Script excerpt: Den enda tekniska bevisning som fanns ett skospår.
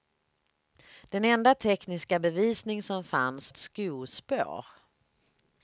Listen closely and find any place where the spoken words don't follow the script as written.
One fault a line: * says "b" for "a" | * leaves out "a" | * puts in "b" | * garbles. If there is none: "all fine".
all fine